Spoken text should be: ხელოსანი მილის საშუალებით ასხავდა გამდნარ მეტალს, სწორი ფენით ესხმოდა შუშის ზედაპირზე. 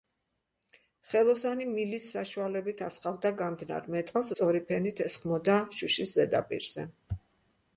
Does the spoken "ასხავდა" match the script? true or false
true